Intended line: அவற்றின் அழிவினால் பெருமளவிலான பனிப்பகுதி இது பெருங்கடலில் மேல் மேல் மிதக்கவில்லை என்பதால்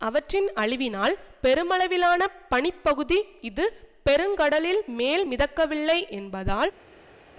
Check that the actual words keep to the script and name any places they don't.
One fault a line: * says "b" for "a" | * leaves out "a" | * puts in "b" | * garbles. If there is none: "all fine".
* leaves out "மேல்"